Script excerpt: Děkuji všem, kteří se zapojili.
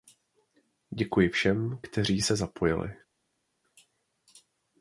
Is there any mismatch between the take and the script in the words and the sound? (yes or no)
no